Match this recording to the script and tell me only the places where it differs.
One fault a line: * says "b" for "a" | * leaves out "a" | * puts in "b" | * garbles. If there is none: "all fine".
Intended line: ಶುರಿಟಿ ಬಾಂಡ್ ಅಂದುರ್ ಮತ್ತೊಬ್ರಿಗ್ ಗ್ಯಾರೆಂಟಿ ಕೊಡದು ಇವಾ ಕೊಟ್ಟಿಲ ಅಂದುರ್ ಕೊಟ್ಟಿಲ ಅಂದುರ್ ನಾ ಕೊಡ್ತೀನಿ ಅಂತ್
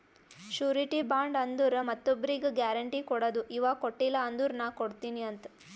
* leaves out "ಕೊಟ್ಟಿಲ ಅಂದುರ್"